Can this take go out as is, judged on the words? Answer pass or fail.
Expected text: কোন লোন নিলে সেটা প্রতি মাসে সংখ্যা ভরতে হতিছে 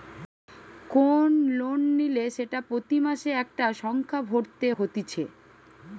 fail